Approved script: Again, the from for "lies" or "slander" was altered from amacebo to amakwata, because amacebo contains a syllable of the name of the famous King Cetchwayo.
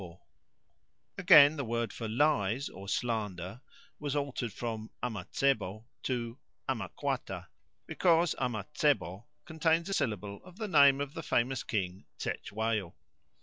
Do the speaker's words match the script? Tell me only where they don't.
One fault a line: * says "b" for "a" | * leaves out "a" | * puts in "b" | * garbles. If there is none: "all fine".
* says "word" for "from"